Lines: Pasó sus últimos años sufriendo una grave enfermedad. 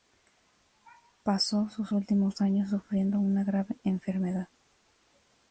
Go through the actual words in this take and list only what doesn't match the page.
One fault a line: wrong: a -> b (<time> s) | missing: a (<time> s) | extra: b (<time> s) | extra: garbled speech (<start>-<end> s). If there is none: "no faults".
no faults